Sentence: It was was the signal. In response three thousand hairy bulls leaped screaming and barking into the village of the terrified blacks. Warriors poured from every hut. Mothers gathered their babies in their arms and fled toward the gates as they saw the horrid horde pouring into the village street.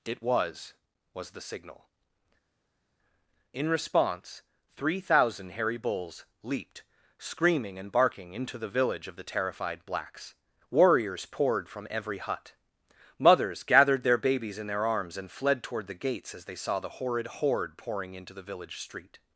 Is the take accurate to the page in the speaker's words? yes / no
yes